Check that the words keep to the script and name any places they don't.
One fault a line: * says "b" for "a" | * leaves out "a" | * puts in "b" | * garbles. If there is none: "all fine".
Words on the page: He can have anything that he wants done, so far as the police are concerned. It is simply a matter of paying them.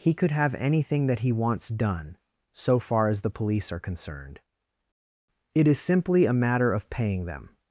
* says "could" for "can"